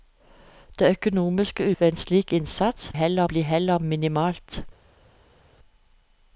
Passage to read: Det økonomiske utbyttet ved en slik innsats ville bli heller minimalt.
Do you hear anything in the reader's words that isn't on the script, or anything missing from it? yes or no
yes